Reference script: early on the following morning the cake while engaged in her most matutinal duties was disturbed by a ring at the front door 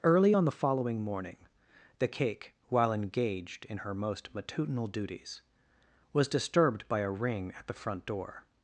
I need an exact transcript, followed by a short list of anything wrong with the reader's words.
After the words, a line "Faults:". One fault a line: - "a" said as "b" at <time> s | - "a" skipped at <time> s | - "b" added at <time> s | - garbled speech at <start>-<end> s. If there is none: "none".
early on the following morning the cake while engaged in her most matutinal duties was disturbed by a ring at the front door
Faults:
none